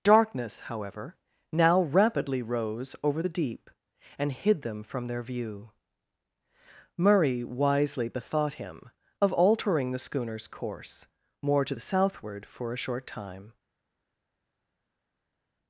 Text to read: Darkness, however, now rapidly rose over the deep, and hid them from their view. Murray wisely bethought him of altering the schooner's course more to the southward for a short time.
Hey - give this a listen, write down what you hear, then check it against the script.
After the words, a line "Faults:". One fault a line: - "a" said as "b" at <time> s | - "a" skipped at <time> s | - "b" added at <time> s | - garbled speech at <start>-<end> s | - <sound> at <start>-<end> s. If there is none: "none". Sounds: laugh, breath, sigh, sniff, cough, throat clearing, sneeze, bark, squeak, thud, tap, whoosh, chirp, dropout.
Darkness, however, now rapidly rose over the deep, and hid them from their view. Murray wisely bethought him of altering the schooner's course more to the southward for a short time.
Faults:
none